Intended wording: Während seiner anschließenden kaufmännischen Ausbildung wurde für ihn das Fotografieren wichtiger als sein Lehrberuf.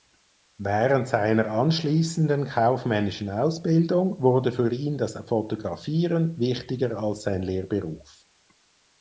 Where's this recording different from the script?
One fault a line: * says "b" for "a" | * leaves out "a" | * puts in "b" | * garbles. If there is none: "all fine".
all fine